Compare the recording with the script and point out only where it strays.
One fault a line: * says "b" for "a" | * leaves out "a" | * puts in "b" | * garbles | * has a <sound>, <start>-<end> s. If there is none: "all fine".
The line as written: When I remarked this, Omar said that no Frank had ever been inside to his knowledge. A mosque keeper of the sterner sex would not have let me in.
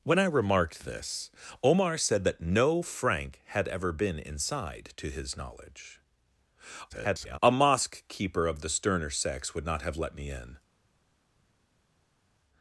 * garbles